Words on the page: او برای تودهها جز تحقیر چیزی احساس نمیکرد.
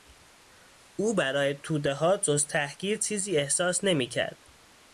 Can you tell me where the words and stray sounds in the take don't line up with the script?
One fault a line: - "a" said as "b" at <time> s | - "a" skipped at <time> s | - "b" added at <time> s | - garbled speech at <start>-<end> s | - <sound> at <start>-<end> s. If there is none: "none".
none